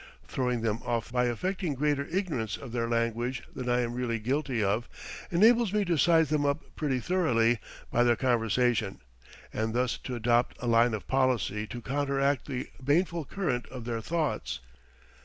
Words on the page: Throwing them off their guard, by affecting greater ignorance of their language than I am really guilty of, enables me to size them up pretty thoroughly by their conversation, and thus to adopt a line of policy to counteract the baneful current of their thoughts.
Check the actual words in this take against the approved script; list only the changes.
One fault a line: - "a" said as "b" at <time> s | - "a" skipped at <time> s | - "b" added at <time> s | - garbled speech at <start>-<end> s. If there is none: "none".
- "their guard" skipped at 1.1 s